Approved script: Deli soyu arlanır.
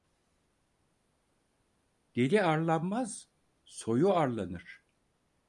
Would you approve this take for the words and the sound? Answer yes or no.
no